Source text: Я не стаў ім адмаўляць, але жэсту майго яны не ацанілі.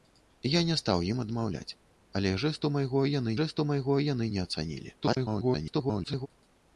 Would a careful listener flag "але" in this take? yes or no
no